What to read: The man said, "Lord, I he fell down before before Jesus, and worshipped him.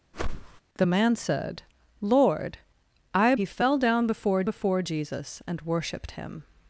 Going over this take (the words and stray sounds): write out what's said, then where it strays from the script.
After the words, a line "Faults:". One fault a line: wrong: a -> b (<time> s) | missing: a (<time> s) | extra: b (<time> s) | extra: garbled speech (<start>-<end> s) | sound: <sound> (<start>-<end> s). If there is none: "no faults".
The man said, "Lord, I he fell down before before Jesus, and worshipped him.
Faults:
sound: whoosh (0.1-0.6 s)